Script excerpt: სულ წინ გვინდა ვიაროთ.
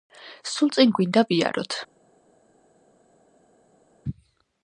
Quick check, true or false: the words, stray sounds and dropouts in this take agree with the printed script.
true